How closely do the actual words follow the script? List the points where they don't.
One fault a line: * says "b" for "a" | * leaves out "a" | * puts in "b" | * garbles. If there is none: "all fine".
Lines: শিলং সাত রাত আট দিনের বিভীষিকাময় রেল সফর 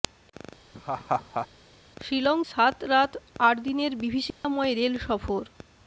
all fine